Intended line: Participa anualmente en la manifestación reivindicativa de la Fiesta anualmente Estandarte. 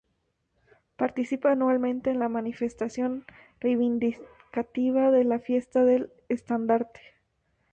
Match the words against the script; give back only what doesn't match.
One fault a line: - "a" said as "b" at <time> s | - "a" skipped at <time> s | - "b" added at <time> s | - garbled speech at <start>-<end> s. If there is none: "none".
- "anualmente" said as "del" at 5.9 s